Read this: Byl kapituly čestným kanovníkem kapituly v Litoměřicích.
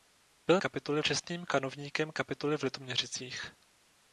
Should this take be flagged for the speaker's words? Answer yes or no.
no